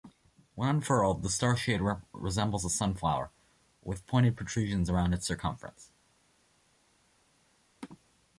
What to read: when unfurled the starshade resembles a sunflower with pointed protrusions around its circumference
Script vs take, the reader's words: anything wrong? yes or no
no